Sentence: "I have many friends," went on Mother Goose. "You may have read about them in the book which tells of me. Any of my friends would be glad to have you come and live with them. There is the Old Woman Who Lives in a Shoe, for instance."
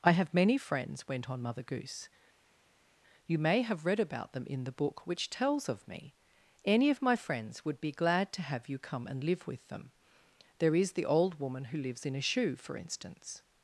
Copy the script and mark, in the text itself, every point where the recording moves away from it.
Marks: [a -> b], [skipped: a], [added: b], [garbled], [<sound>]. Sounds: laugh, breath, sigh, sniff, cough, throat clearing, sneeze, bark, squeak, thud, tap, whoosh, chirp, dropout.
"I have many friends," went on Mother Goose. "You may have read about them in the book which tells of me. Any of my friends would be glad to have you come and live with them. There is the Old Woman Who Lives in a Shoe, for instance."